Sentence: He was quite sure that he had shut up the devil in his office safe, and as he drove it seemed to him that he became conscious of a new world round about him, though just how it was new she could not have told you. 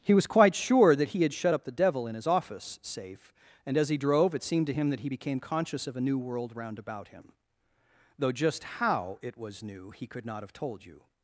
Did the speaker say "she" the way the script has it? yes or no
no